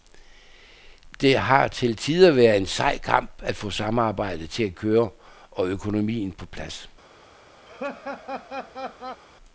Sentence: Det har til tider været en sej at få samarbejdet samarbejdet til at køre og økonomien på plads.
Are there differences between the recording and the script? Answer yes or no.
yes